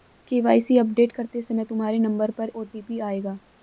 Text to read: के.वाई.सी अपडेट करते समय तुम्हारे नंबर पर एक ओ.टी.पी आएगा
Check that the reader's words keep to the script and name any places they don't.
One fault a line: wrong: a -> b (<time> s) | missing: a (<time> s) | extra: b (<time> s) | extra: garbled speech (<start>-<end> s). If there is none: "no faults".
missing: एक (2.5 s)